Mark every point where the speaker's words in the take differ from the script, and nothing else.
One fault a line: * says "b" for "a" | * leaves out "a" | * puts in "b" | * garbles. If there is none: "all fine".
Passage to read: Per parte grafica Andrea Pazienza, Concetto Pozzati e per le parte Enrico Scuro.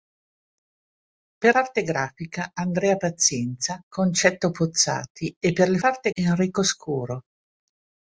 all fine